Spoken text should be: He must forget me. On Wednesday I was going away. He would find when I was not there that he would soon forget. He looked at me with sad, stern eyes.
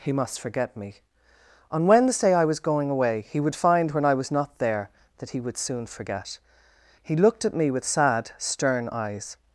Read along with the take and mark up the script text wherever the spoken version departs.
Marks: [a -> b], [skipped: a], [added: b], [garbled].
He must forget me. On Wednesday I was going away. He would find when I was not there that he would soon forget. He looked at me with sad, stern eyes.